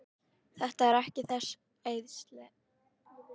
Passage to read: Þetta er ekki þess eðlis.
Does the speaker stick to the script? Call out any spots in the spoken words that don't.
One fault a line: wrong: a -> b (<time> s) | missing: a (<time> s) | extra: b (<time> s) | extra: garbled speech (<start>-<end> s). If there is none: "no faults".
no faults